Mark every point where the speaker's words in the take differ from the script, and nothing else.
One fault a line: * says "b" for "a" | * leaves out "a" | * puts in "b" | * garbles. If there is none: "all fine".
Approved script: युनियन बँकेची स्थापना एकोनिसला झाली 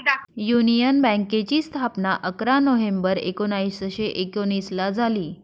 * puts in "अकरा नोव्हेंबर एकोणीसशे"